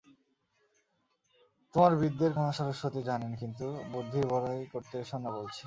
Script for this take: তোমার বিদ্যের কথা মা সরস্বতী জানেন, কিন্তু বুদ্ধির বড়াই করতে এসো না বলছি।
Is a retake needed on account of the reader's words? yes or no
yes